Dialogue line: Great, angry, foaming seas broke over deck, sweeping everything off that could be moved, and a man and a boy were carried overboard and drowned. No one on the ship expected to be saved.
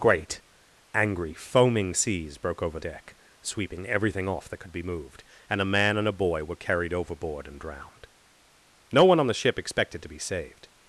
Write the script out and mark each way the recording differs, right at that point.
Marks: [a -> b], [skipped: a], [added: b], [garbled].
Great, angry, foaming seas broke over deck, sweeping everything off that could be moved, and a man and a boy were carried overboard and drowned. No one on the ship expected to be saved.